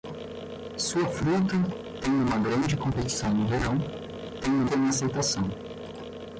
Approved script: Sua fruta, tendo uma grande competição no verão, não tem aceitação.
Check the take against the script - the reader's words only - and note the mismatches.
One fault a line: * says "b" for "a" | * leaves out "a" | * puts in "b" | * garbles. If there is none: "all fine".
* says "tendo" for "não"